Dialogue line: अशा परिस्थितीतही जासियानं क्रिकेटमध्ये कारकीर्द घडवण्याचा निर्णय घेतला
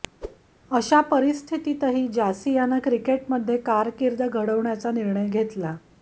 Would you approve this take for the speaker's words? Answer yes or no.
yes